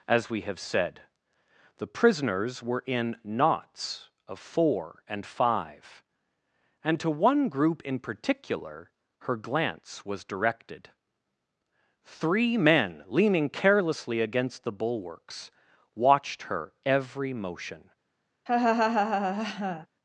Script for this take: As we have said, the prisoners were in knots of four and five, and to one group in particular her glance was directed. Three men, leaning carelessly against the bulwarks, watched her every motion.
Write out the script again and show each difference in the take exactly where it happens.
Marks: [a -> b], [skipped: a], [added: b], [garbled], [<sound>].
As we have said, the prisoners were in knots of four and five, and to one group in particular her glance was directed. Three men, leaning carelessly against the bulwarks, watched her every motion. [laugh]